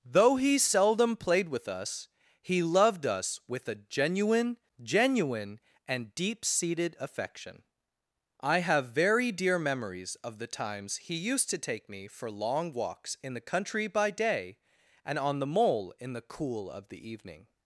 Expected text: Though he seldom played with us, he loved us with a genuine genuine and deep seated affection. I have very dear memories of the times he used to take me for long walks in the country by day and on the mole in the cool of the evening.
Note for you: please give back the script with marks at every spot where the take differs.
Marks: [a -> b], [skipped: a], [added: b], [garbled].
Though he seldom played with us, he loved us with a genuine genuine and deep seated affection. I have very dear memories of the times he used to take me for long walks in the country by day and on the mole in the cool of the evening.